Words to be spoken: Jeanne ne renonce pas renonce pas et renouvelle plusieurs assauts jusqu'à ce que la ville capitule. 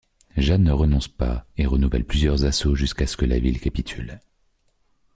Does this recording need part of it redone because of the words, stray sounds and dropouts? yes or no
yes